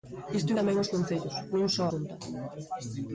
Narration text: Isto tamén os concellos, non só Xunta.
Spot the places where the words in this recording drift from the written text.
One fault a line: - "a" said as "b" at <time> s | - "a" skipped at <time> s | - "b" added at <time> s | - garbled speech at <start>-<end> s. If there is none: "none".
none